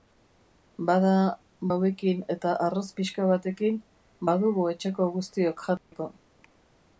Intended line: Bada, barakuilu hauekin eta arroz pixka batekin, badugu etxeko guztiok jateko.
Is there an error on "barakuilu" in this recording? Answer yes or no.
yes